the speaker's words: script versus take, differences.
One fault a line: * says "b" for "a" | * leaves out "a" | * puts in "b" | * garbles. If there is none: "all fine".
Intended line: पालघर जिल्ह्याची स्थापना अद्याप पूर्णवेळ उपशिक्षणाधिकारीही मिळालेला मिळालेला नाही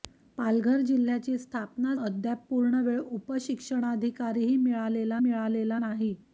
all fine